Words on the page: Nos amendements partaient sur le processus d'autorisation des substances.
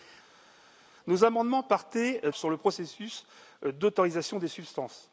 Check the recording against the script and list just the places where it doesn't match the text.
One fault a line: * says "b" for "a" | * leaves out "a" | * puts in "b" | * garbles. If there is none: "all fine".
all fine